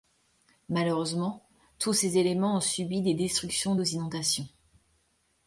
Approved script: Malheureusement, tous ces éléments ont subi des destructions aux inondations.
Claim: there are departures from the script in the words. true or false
false